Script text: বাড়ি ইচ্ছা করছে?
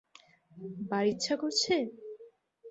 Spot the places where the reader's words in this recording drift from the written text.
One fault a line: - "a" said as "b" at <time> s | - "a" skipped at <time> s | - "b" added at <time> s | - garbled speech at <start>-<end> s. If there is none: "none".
none